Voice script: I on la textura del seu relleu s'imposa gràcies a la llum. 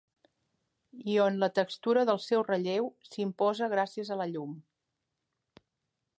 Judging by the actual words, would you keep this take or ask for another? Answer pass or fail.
pass